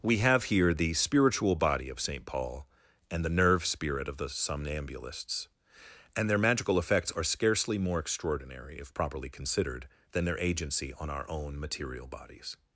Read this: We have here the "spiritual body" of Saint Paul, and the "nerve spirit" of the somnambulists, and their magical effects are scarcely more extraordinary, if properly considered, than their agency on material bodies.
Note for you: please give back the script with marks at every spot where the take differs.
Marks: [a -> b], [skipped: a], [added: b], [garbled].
We have here the "spiritual body" of Saint Paul, and the "nerve spirit" of the somnambulists, and their magical effects are scarcely more extraordinary, if properly considered, than their agency on [added: our own] material bodies.